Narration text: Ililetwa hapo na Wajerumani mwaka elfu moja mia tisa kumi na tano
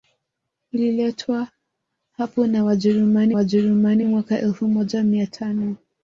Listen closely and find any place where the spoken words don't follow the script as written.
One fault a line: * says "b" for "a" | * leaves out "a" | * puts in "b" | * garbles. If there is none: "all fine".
* puts in "Wajerumani"
* leaves out "tisa kumi na"